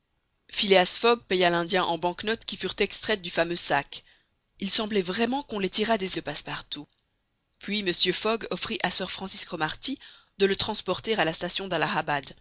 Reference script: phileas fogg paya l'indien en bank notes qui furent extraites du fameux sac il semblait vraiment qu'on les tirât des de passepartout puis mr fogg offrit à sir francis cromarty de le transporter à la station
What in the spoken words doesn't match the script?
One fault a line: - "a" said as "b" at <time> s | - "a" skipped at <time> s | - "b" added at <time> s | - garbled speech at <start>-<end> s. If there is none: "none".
none